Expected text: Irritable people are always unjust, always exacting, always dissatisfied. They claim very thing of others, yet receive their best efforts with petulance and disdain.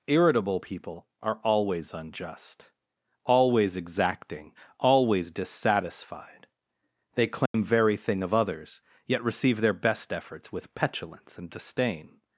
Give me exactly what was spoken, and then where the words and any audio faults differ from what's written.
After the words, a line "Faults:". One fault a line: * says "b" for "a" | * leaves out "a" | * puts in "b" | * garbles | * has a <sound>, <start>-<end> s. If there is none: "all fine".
Irritable people are always unjust, always exacting, always dissatisfied. They claim very thing of others, yet receive their best efforts with petulance and disdain.
Faults:
* has a dropout, 7.5-7.5 s